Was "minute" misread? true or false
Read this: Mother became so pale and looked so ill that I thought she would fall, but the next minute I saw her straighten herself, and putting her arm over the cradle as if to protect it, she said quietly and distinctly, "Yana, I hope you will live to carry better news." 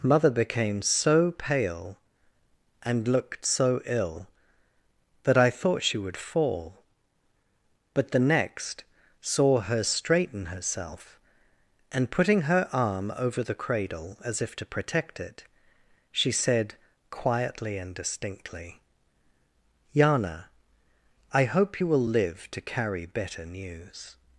true